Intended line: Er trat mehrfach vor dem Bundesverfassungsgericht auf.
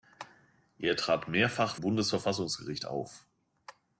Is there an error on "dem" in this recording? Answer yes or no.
yes